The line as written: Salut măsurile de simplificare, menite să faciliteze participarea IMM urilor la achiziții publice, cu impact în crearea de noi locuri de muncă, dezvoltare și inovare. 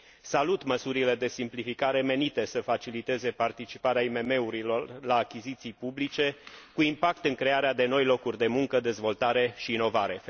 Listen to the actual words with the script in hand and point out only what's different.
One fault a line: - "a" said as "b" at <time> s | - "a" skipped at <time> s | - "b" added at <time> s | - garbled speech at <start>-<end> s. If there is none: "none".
none